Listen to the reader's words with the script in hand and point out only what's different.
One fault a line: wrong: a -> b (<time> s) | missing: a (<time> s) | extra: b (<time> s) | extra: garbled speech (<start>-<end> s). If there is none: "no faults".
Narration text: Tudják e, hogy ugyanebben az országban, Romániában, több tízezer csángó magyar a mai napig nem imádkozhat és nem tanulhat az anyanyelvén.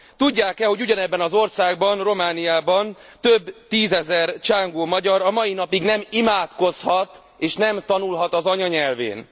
no faults